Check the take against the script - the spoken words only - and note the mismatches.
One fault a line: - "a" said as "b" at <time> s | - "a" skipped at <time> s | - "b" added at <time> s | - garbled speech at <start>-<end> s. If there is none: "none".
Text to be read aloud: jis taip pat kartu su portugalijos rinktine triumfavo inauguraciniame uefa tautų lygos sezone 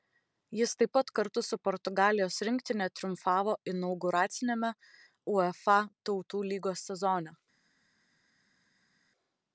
none